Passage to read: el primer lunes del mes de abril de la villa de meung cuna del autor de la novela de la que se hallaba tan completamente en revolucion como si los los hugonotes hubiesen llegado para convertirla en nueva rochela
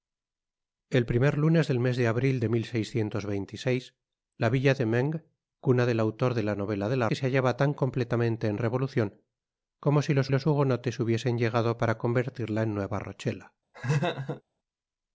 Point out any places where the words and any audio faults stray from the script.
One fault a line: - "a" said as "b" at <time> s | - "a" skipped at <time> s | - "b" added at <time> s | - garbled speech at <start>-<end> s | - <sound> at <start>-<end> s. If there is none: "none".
- laugh at 13.7-14.4 s